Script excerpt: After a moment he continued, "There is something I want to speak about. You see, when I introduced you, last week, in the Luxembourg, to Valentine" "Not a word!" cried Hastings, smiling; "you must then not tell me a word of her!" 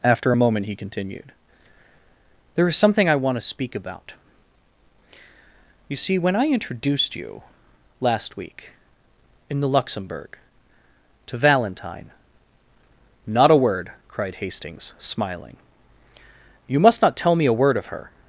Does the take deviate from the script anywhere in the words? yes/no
yes